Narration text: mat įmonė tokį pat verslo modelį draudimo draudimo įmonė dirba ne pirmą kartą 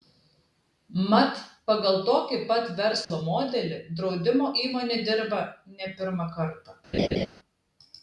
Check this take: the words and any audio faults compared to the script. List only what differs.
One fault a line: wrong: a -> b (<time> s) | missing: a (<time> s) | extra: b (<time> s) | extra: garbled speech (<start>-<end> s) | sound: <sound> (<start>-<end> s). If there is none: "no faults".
wrong: įmonė -> pagal (1.7 s)
sound: dropout (3.0-3.1 s)
missing: draudimo (4.5 s)
sound: laugh (6.9-7.3 s)